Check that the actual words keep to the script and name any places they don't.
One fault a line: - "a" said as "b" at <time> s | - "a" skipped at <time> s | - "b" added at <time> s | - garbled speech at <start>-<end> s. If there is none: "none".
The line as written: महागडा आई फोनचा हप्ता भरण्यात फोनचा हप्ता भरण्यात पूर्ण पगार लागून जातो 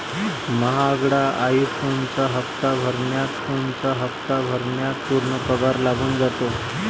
none